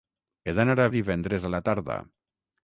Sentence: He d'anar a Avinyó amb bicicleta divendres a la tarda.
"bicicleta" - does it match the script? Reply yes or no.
no